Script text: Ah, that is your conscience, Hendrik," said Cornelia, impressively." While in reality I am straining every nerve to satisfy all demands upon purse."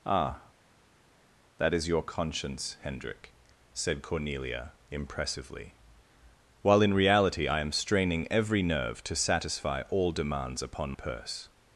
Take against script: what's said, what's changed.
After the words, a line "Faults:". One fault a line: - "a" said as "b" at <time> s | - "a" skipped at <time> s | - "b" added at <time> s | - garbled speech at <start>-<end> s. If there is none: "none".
Ah, that is your conscience, Hendrik," said Cornelia, impressively." While in reality I am straining every nerve to satisfy all demands upon purse."
Faults:
none